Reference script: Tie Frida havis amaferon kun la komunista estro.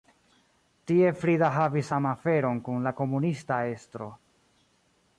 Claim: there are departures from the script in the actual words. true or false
false